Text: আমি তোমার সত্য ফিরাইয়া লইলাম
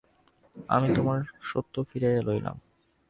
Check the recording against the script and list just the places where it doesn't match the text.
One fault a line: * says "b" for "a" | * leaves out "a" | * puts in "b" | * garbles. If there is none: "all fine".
all fine